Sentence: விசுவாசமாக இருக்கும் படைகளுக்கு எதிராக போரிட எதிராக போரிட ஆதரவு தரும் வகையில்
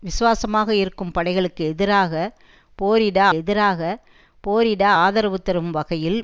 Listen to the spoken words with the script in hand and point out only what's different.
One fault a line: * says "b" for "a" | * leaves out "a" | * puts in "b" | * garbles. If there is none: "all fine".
all fine